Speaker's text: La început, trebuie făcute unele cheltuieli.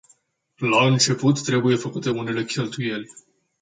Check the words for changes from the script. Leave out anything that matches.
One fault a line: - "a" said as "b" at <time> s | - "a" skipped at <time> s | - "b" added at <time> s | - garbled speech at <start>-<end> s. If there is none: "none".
none